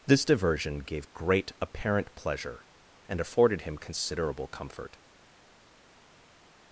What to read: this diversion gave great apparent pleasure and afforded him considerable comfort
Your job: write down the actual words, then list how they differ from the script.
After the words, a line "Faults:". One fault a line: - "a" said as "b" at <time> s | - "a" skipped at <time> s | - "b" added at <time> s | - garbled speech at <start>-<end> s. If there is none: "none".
this diversion gave great apparent pleasure and afforded him considerable comfort
Faults:
none